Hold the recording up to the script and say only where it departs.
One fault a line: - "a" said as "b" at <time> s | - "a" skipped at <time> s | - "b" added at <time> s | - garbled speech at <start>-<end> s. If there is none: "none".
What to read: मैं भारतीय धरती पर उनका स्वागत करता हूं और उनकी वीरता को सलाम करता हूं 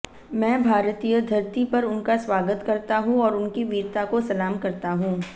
none